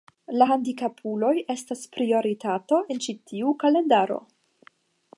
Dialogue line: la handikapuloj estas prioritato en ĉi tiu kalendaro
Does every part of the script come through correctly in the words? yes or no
yes